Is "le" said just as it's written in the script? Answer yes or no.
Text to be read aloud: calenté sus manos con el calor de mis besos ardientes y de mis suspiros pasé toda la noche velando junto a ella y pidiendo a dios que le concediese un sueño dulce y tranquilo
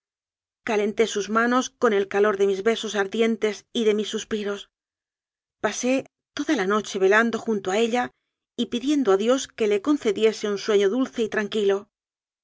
yes